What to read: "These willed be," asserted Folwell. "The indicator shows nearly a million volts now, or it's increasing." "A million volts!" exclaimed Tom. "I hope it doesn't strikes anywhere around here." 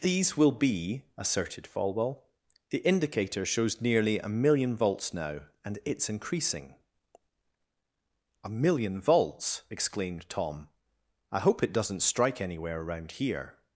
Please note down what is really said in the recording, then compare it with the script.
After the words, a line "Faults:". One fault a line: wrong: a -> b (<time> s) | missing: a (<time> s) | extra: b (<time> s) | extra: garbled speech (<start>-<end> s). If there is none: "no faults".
"These will be," asserted Folwell. "The indicator shows nearly a million volts now, and it's increasing." "A million volts!" exclaimed Tom. "I hope it doesn't strike anywhere around here."
Faults:
wrong: willed -> will (0.3 s)
wrong: or -> and (5.6 s)
wrong: strikes -> strike (12.0 s)